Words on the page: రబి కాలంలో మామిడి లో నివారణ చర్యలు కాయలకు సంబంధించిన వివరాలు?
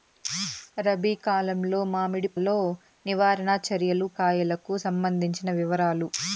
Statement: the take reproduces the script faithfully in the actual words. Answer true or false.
true